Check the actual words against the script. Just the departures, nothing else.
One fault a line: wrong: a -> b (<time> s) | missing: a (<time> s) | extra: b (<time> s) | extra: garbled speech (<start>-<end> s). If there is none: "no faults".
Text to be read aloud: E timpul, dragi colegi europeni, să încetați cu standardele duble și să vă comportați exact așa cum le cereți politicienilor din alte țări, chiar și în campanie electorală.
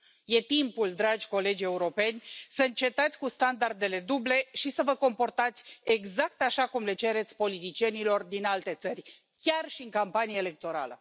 no faults